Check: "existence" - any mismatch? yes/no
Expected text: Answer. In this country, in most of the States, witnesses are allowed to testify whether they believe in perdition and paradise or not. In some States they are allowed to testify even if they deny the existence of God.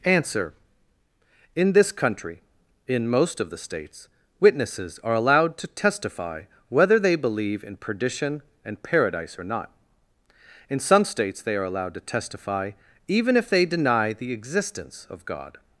no